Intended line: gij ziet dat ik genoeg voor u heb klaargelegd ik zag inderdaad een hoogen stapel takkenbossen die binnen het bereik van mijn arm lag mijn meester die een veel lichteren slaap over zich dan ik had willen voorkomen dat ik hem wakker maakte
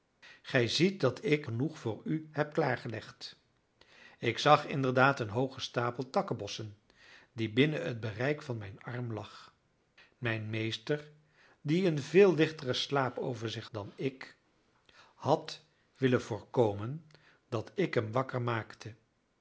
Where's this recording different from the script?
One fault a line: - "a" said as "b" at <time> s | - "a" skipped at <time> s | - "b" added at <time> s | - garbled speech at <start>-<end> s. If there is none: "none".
none